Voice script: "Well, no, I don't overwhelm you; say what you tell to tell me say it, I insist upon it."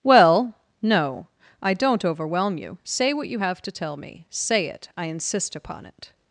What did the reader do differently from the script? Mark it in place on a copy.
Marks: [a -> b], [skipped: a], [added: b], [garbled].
"Well, no, I don't overwhelm you; say what you [tell -> have] to tell me say it, I insist upon it."